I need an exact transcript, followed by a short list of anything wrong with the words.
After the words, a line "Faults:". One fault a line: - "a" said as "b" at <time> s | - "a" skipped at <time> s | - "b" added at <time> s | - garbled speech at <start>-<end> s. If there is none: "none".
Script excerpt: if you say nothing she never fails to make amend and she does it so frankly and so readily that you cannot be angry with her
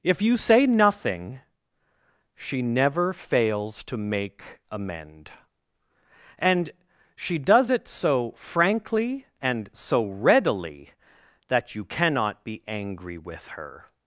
if you say nothing she never fails to make amend and she does it so frankly and so readily that you cannot be angry with her
Faults:
none